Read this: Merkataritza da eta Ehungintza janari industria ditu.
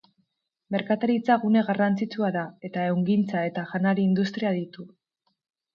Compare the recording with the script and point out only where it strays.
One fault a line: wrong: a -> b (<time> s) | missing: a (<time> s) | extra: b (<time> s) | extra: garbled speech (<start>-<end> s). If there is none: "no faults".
extra: gune garrantzitsua (1.4 s)
extra: eta (3.5 s)